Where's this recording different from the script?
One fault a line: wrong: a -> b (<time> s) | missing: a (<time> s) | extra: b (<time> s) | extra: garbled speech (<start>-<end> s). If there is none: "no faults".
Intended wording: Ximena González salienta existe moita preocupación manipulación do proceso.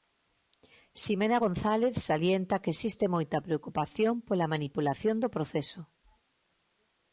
extra: que (2.6 s)
extra: pola (4.3 s)